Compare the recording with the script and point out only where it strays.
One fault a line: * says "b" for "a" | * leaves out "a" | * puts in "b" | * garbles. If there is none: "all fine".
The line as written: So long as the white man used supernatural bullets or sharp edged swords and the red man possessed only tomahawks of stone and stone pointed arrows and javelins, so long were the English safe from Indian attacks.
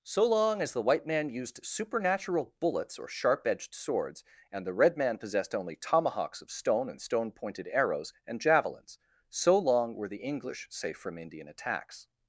all fine